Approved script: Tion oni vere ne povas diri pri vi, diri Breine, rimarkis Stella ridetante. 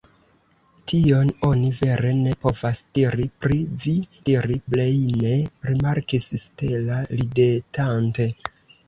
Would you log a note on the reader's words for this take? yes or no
no